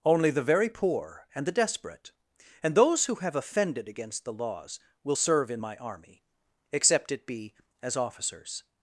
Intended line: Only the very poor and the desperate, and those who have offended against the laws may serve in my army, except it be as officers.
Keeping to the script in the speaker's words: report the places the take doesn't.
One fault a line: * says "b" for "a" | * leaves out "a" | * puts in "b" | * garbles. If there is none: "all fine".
* says "will" for "may"